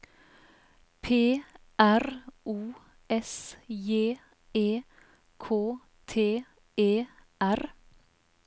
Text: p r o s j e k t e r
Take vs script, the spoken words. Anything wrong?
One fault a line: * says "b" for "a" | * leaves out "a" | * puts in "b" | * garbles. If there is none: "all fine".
all fine